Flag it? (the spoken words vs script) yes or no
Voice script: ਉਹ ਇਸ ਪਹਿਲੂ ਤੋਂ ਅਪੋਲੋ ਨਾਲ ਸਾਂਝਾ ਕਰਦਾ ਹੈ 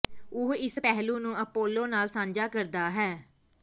yes